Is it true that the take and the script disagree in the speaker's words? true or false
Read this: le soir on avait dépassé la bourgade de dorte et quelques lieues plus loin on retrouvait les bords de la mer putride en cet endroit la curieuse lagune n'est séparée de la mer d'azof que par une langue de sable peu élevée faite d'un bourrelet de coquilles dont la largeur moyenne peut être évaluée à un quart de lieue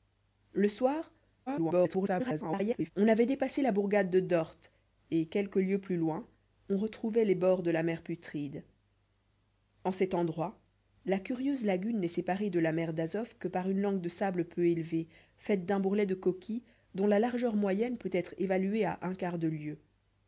true